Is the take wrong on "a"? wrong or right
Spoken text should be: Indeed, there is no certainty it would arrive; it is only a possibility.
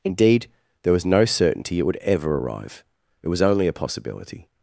right